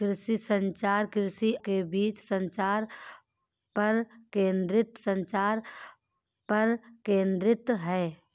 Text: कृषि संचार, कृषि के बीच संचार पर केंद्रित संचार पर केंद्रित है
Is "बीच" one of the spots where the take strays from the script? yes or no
no